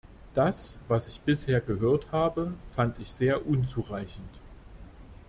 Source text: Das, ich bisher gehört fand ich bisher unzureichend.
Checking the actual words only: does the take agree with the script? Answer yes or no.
no